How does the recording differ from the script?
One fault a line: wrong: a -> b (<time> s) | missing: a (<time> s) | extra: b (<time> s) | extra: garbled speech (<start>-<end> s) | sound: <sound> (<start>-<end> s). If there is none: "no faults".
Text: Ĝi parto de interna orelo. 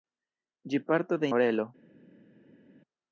missing: interna (1.3 s)